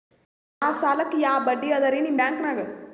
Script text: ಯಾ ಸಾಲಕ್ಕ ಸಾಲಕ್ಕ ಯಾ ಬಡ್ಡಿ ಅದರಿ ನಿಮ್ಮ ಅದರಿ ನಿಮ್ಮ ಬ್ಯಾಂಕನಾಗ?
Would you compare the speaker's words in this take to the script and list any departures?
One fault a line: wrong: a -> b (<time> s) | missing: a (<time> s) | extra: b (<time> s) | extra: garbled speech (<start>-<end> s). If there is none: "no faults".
missing: ಸಾಲಕ್ಕ (1.1 s)
missing: ಅದರಿ ನಿಮ್ಮ (2.2 s)